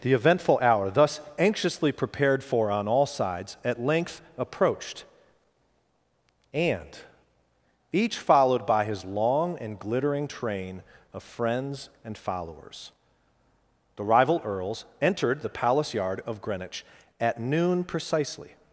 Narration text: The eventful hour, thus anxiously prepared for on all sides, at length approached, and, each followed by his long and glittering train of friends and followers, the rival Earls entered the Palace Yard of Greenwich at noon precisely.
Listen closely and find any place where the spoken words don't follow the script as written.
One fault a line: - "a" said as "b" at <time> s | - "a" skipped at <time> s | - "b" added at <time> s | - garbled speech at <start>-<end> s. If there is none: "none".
none